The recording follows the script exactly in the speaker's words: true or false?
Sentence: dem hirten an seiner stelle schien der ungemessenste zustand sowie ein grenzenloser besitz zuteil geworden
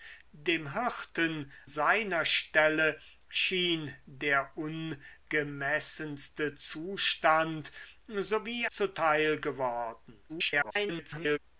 false